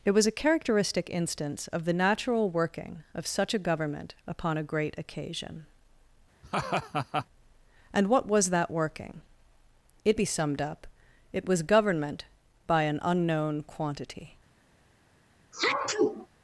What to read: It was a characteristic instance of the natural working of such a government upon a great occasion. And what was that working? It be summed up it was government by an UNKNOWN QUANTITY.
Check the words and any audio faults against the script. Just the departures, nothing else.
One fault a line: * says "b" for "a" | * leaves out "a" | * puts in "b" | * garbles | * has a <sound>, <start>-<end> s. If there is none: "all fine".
* has a laugh, 6.4-7.3 s
* has a sneeze, 15.5-16.3 s